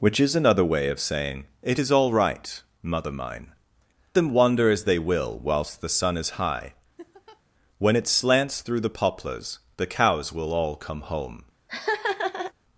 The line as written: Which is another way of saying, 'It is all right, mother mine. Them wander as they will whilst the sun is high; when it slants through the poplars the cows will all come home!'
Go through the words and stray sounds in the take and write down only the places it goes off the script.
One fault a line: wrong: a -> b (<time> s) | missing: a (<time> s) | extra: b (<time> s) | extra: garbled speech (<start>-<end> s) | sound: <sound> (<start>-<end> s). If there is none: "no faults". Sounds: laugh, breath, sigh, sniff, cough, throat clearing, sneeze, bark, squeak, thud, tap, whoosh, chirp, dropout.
sound: laugh (7.0-7.4 s)
sound: laugh (11.7-12.5 s)